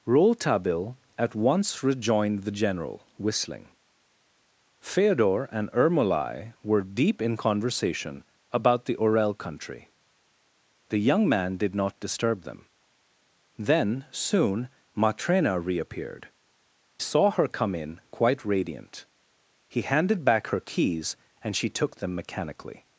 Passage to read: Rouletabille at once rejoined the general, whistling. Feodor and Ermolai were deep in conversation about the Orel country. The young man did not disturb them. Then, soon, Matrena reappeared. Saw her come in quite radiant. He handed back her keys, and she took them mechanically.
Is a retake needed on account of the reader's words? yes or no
no